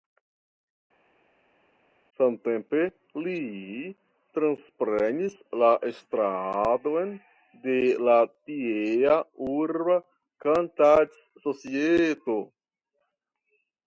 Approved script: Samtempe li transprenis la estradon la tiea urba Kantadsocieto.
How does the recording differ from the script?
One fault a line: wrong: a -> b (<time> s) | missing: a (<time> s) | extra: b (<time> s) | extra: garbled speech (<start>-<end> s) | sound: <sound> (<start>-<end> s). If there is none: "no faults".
extra: de (7.7 s)